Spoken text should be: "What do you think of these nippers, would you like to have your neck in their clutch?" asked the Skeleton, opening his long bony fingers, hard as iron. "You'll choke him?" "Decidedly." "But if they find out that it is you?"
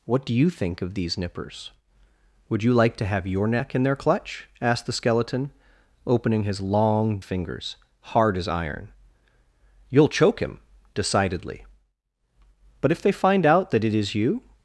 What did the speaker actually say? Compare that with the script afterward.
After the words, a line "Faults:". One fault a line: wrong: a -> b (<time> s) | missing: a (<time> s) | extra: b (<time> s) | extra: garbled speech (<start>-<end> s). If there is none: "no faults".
"What do you think of these nippers, would you like to have your neck in their clutch?" asked the Skeleton, opening his long fingers, hard as iron. "You'll choke him?" "Decidedly." "But if they find out that it is you?"
Faults:
missing: bony (7.2 s)